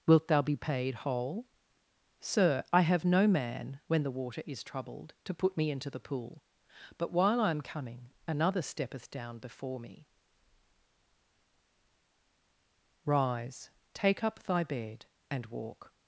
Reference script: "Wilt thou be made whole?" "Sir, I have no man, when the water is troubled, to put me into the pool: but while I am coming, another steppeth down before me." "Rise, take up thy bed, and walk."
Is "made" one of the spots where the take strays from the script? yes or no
yes